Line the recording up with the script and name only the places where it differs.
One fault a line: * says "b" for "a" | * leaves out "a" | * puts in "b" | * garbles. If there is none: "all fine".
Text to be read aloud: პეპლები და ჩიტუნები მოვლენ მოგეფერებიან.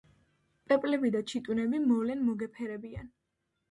all fine